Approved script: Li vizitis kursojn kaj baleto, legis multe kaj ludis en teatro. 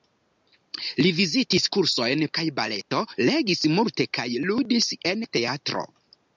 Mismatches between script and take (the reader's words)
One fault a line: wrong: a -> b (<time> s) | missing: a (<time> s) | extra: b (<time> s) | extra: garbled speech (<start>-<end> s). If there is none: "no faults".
no faults